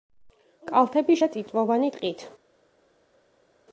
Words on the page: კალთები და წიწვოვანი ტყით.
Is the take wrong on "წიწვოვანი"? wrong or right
right